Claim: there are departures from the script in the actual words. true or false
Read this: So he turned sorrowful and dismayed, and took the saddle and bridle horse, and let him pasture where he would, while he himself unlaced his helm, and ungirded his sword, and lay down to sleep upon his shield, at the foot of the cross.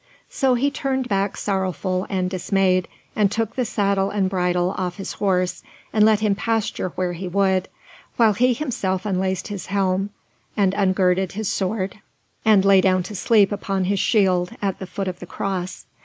true